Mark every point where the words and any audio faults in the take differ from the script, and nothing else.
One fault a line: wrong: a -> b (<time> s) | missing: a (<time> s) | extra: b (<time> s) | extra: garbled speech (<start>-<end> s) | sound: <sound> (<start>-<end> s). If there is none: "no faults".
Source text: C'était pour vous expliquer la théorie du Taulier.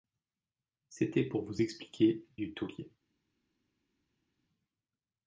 missing: la théorie (2.3 s)